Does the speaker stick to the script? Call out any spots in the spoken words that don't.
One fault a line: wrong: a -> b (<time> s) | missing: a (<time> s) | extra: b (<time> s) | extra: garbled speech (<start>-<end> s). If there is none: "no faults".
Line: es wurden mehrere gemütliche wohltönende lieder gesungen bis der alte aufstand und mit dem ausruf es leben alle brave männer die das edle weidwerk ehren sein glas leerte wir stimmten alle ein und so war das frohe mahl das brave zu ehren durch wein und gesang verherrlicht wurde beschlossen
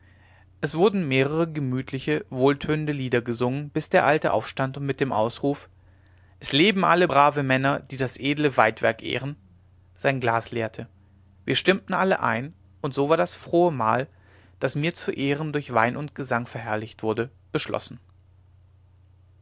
wrong: brave -> mir (14.7 s)